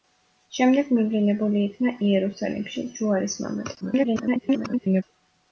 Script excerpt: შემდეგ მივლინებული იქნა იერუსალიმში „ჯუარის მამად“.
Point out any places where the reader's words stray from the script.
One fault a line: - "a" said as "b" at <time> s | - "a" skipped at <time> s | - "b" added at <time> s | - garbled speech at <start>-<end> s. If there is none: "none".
- garbled speech at 3.8-5.0 s